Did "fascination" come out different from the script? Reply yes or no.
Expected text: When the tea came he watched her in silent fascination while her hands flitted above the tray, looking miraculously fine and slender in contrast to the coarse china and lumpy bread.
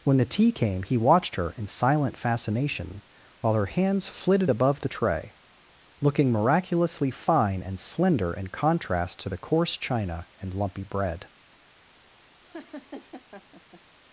no